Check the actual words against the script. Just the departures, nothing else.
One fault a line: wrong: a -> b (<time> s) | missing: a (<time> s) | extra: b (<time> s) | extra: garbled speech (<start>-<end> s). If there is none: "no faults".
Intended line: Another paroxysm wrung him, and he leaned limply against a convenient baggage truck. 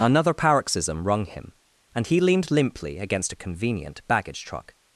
no faults